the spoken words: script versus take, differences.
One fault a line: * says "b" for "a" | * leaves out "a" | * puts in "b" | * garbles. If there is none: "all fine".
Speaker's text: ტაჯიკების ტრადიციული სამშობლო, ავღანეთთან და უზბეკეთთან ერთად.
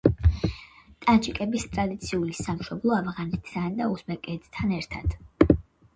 all fine